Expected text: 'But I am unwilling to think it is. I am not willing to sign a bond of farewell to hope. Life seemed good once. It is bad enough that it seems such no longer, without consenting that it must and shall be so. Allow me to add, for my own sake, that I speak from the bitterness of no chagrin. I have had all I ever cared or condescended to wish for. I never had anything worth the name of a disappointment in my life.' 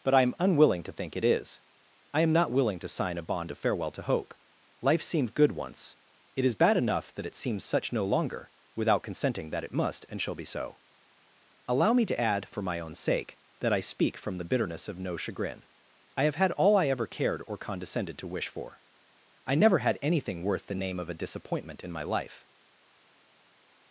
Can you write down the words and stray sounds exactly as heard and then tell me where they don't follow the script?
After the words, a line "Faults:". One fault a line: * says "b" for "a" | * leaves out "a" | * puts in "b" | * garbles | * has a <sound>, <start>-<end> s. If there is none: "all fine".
'But I am unwilling to think it is. I am not willing to sign a bond of farewell to hope. Life seemed good once. It is bad enough that it seems such no longer, without consenting that it must and shall be so. Allow me to add, for my own sake, that I speak from the bitterness of no chagrin. I have had all I ever cared or condescended to wish for. I never had anything worth the name of a disappointment in my life.'
Faults:
all fine